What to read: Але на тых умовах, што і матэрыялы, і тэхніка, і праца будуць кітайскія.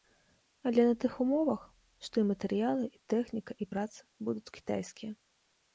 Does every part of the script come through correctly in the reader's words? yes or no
yes